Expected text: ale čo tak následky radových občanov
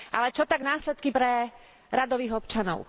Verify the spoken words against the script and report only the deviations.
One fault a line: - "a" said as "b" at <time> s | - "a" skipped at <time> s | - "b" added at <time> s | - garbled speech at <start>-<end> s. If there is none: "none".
- "pre" added at 1.1 s